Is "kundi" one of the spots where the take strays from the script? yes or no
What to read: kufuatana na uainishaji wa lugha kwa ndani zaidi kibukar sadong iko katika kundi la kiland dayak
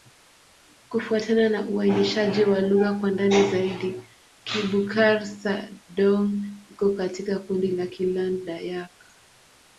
no